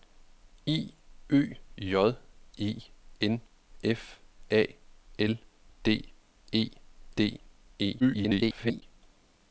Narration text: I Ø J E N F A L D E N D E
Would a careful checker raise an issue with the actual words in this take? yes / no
yes